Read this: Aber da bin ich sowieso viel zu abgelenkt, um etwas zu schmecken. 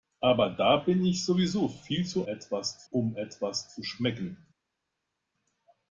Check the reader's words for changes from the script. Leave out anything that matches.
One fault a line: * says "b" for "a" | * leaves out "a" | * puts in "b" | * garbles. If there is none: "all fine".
* says "etwas" for "abgelenkt"